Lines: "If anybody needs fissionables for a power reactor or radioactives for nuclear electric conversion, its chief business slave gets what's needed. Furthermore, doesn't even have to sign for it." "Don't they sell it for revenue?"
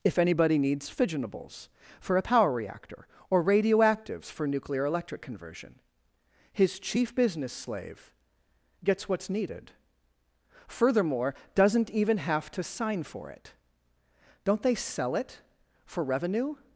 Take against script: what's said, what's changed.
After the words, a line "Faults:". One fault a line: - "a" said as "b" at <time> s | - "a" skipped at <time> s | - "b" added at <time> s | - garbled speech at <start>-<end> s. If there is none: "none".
"If anybody needs fissionables for a power reactor or radioactives for nuclear electric conversion, his chief business slave gets what's needed. Furthermore, doesn't even have to sign for it." "Don't they sell it for revenue?"
Faults:
- "its" said as "his" at 6.5 s